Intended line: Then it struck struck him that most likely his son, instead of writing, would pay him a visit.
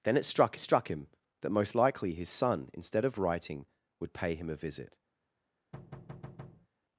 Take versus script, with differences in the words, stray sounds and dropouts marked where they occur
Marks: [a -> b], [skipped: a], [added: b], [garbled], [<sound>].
Then it struck struck him that most likely his son, instead of writing, would pay him a visit. [thud]